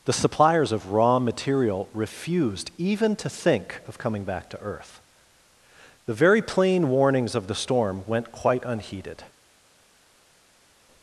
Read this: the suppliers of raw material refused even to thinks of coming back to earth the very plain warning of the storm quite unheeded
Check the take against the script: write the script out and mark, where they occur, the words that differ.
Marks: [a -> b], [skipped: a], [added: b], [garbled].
the suppliers of raw material refused even to [thinks -> think] of coming back to earth the very plain [warning -> warnings] of the storm [added: went] quite unheeded